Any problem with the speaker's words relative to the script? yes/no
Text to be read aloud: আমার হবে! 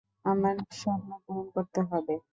yes